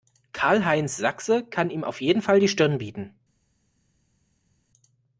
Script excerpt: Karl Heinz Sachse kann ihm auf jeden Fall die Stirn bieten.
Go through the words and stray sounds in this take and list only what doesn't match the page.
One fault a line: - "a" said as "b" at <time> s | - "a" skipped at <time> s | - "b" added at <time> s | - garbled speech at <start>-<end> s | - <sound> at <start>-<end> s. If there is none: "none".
none